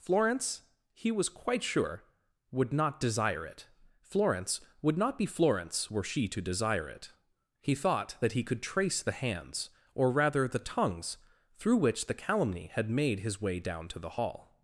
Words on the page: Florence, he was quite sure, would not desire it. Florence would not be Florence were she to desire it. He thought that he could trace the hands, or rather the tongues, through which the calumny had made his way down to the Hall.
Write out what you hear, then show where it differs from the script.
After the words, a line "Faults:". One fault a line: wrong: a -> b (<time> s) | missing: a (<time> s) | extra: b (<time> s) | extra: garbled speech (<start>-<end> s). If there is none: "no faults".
Florence, he was quite sure, would not desire it. Florence would not be Florence were she to desire it. He thought that he could trace the hands, or rather the tongues, through which the calumny had made his way down to the Hall.
Faults:
no faults